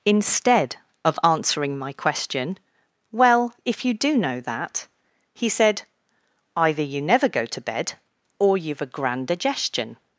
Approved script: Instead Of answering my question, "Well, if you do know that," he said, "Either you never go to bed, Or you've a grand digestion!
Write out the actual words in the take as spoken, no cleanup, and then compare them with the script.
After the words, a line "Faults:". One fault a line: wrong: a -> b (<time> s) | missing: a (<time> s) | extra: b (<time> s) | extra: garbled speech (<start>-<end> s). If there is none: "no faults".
Instead Of answering my question, "Well, if you do know that," he said, "Either you never go to bed, Or you've a grand digestion!
Faults:
no faults